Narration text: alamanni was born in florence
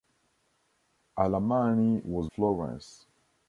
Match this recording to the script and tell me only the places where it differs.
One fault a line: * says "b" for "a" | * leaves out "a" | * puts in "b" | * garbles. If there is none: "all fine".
* leaves out "born in"